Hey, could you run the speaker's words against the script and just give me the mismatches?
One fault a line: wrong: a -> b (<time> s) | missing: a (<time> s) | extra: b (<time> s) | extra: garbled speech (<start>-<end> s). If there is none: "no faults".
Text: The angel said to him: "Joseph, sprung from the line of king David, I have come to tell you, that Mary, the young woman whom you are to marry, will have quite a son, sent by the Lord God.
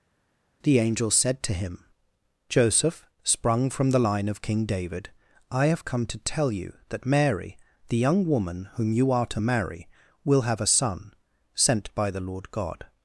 missing: quite (10.6 s)